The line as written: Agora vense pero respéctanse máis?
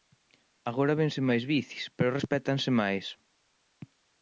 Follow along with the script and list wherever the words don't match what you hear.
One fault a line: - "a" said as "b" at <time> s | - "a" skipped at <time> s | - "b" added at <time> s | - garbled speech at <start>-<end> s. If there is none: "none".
- "máis bicis" added at 1.3 s